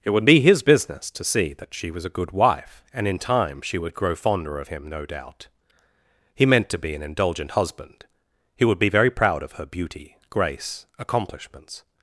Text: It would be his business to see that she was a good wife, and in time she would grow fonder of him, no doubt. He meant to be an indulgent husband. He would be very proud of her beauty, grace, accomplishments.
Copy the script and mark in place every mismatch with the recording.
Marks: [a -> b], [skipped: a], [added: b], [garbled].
It would be his business to see that she was a good wife, and in time she would grow fonder of him, no doubt. He meant to be an indulgent husband. He would be very proud of her beauty, grace, accomplishments.